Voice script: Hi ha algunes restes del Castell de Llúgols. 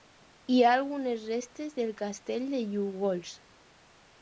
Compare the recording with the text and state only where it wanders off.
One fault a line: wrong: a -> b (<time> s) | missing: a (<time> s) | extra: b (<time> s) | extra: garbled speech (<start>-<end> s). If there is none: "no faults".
no faults